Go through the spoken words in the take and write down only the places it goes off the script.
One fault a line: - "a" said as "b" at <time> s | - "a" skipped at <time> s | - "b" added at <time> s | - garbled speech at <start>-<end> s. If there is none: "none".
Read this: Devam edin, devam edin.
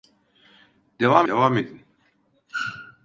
- "edin" skipped at 1.3 s